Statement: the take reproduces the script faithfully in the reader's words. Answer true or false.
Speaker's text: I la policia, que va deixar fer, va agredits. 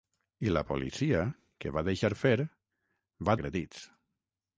true